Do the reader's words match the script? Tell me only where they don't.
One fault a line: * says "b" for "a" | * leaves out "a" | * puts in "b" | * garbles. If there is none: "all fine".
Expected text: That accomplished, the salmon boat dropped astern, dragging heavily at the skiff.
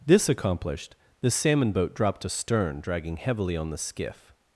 * says "This" for "That"
* says "on" for "at"